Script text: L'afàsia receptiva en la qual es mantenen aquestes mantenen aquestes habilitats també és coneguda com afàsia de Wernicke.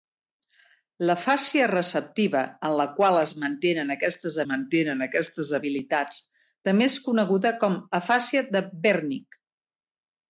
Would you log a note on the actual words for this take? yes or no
no